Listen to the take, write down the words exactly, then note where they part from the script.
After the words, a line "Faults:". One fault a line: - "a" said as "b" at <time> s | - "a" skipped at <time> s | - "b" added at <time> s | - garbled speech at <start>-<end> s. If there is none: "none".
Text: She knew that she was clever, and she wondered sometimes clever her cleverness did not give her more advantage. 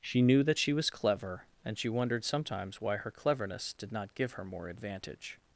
She knew that she was clever, and she wondered sometimes why her cleverness did not give her more advantage.
Faults:
- "clever" said as "why" at 2.8 s